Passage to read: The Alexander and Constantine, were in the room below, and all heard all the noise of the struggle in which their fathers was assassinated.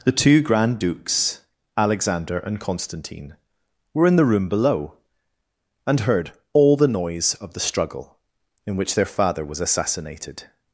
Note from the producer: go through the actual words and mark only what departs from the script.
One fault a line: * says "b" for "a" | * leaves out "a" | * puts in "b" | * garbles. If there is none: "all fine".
* puts in "two grand dukes"
* leaves out "all"
* says "father" for "fathers"